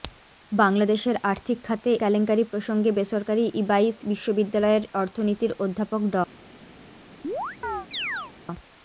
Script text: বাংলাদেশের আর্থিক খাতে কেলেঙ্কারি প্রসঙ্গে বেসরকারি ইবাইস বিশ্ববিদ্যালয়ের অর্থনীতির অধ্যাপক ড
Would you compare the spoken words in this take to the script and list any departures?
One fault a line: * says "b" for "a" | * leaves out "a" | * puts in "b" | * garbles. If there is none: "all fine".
all fine